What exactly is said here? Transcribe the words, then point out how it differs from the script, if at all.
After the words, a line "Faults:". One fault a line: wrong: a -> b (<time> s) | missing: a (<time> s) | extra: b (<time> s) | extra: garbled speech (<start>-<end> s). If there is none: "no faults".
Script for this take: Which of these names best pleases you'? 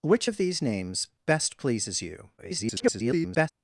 Which of these names best pleases you'? [garbled]
Faults:
extra: garbled speech (2.4-3.5 s)